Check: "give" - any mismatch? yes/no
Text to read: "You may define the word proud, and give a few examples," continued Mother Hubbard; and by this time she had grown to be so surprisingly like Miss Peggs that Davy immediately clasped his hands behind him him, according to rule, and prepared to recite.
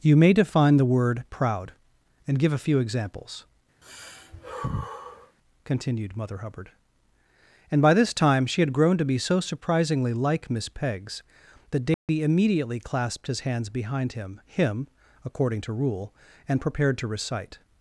no